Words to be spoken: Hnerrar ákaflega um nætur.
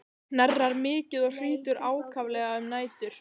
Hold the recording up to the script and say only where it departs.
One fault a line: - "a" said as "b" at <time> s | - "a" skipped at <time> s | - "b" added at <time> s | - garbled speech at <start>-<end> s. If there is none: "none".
- "mikið og hrýtur" added at 0.8 s